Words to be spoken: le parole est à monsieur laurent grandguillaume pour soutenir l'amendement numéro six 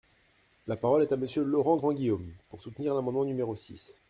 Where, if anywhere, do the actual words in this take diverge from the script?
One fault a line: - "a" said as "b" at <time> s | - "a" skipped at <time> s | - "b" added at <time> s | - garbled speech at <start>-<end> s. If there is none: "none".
- "le" said as "la" at 0.7 s